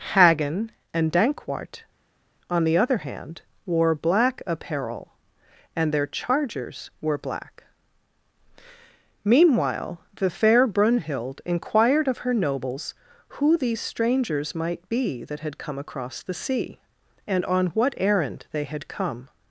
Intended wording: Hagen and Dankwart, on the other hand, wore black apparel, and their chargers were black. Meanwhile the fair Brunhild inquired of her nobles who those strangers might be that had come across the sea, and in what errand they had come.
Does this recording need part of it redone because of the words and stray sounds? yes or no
yes